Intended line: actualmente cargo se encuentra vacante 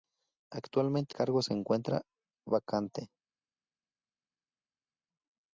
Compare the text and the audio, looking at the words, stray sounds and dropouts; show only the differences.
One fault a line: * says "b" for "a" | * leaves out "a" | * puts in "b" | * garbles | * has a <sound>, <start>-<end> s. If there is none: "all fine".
all fine